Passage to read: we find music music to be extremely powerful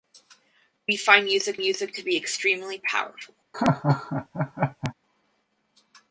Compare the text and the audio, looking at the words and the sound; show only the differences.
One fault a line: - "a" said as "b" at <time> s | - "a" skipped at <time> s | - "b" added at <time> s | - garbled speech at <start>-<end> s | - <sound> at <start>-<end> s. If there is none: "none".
- laugh at 3.5-4.9 s